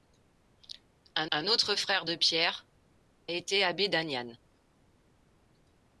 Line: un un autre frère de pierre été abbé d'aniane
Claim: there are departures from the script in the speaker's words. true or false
false